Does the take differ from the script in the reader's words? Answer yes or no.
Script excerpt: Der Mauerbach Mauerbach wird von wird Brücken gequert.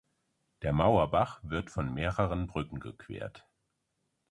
yes